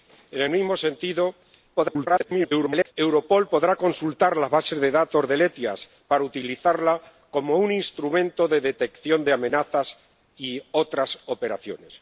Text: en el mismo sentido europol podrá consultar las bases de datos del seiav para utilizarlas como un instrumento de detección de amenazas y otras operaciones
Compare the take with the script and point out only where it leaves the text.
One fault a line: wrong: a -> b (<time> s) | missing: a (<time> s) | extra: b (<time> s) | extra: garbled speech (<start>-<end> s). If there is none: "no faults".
extra: garbled speech (1.8-2.9 s)